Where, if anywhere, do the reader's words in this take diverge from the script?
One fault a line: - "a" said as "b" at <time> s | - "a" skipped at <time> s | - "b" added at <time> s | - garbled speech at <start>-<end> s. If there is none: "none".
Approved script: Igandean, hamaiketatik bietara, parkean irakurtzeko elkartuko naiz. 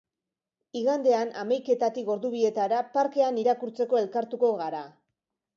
- "ordu" added at 2.1 s
- "naiz" said as "gara" at 4.6 s